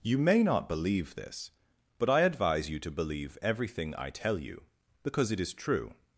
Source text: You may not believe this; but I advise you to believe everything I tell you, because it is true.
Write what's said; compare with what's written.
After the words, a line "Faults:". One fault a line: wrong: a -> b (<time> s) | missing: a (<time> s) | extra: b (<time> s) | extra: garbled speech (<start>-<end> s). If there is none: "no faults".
You may not believe this; but I advise you to believe everything I tell you, because it is true.
Faults:
no faults